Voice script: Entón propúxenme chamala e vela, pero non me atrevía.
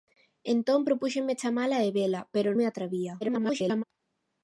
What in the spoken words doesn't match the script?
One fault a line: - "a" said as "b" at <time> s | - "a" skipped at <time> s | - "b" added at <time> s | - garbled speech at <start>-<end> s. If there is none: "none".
- "non" skipped at 2.5 s
- garbled speech at 3.2-3.8 s